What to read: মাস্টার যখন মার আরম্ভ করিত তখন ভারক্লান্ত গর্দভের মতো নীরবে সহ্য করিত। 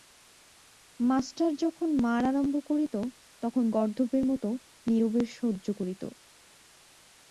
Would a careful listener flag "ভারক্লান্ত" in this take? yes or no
yes